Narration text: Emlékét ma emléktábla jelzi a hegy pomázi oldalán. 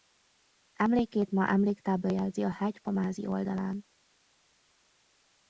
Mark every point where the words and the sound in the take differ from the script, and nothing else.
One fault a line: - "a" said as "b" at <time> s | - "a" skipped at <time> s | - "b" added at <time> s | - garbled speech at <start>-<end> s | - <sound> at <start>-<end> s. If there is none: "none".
none